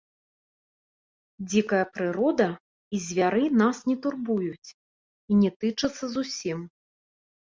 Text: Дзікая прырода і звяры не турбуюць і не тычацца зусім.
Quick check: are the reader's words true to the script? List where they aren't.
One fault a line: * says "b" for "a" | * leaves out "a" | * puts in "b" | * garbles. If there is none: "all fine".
* puts in "нас"